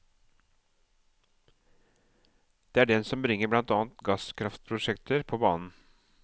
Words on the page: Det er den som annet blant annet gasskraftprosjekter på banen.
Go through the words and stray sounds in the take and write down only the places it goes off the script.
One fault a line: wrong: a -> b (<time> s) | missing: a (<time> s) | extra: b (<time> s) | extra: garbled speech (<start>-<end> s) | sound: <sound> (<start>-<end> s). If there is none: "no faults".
wrong: annet -> bringer (3.2 s)